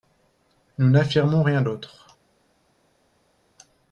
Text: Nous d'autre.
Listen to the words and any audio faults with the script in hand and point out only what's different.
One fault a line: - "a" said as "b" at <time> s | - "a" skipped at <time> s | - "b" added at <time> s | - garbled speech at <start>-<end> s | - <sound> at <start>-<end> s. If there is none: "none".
- "n'affirmons rien" added at 0.9 s